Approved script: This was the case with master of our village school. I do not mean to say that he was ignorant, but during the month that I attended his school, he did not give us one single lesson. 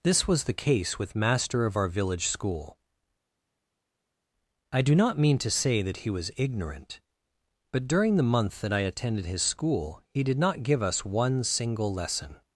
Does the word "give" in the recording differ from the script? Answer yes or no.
no